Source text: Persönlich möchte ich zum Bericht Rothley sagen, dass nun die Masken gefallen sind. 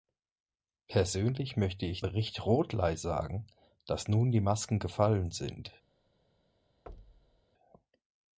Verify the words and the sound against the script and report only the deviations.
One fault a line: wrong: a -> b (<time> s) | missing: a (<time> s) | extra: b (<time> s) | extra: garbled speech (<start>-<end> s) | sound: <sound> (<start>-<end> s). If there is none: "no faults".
missing: zum (2.0 s)
sound: thud (6.9-7.4 s)